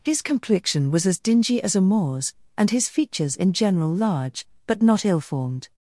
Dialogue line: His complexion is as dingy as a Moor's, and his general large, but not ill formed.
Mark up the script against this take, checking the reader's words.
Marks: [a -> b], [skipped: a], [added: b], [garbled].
His complexion [is -> was] as dingy as a Moor's, and his [added: features in] general large, but not ill formed.